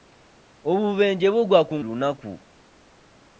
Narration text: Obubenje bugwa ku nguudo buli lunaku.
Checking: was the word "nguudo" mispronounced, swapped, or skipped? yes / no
yes